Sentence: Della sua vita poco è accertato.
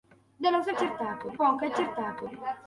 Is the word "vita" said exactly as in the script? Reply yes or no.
no